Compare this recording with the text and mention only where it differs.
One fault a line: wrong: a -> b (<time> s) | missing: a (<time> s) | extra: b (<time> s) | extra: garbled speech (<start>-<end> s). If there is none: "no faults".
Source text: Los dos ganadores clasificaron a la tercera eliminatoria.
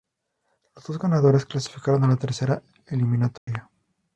no faults